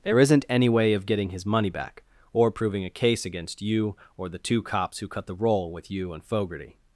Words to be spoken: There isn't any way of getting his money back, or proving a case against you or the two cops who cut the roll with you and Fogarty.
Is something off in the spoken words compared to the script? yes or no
no